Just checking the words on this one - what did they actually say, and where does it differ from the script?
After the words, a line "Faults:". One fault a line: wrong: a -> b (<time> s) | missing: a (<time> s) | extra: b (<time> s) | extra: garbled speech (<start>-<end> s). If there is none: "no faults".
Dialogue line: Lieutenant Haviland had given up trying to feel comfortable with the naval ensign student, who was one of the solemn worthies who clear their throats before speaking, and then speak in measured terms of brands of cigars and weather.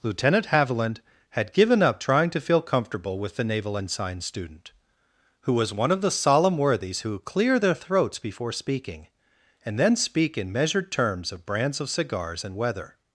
Lieutenant Haviland had given up trying to feel comfortable with the naval ensign student, who was one of the solemn worthies who clear their throats before speaking, and then speak in measured terms of brands of cigars and weather.
Faults:
no faults